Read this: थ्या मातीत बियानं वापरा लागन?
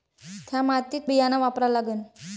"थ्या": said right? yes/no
yes